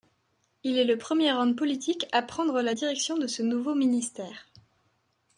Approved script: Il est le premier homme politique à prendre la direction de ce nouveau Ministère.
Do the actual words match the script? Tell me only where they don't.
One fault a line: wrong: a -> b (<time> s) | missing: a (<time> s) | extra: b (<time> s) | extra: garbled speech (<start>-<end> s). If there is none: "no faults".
no faults